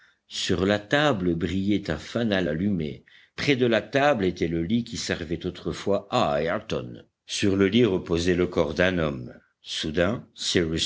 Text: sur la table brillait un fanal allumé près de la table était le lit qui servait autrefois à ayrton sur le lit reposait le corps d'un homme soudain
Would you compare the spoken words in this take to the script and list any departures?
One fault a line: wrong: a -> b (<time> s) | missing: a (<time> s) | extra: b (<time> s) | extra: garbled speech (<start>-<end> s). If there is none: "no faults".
no faults